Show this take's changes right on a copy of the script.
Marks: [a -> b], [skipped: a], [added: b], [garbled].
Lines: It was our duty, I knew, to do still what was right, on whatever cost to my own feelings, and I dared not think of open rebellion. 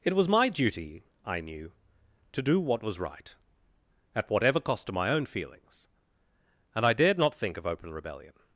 It was [our -> my] duty, I knew, to do [skipped: still] what was right, [on -> at] whatever cost to my own feelings, and I dared not think of open rebellion.